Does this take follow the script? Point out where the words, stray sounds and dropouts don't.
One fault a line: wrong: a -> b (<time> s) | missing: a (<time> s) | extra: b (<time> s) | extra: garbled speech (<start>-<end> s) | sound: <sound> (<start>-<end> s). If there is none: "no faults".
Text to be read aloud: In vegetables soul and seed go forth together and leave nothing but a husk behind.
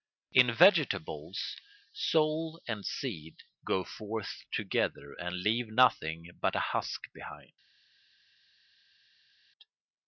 no faults